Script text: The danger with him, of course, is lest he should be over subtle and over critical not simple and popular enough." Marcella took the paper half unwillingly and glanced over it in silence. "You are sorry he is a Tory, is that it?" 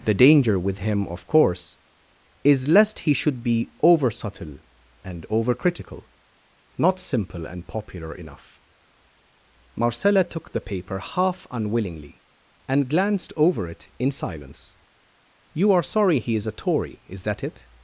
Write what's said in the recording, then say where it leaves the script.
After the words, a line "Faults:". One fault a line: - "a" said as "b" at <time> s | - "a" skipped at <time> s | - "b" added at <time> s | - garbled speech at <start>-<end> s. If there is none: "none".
The danger with him, of course, is lest he should be over subtle and over critical not simple and popular enough." Marcella took the paper half unwillingly and glanced over it in silence. "You are sorry he is a Tory, is that it?"
Faults:
none